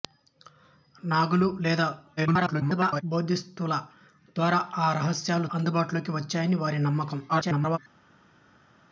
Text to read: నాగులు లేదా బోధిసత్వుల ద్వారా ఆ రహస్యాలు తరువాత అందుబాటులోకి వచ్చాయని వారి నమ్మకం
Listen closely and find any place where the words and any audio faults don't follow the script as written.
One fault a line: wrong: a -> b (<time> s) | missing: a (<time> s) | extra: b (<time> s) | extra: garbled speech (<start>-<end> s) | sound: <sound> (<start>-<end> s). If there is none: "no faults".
extra: garbled speech (2.2-3.0 s)
missing: తరువాత (5.5 s)
extra: garbled speech (7.3-7.8 s)